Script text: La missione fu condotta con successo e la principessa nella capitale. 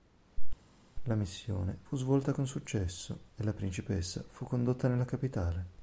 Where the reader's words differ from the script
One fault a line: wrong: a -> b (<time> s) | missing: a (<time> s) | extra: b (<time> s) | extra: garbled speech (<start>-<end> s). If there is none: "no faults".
wrong: condotta -> svolta (2.0 s)
extra: fu condotta (4.3 s)